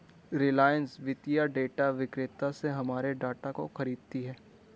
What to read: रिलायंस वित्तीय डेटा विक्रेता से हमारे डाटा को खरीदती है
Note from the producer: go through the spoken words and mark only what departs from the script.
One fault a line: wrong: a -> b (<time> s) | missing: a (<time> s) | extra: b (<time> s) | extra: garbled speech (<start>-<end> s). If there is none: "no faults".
no faults